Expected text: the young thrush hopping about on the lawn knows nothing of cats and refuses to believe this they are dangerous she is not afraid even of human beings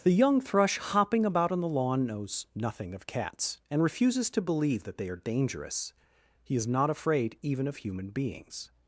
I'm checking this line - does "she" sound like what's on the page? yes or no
no